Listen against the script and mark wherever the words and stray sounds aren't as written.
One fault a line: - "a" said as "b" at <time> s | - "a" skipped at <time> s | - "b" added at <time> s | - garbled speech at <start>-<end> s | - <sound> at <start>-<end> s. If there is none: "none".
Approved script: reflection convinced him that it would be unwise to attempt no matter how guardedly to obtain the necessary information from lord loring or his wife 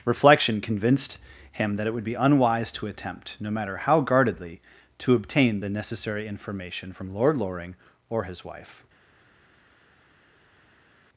none